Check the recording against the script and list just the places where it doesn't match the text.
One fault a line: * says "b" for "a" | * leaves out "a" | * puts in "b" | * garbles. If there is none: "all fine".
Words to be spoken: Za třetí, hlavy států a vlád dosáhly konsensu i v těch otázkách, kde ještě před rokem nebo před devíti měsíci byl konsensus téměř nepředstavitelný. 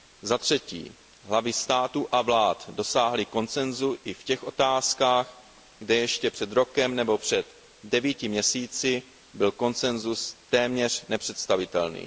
all fine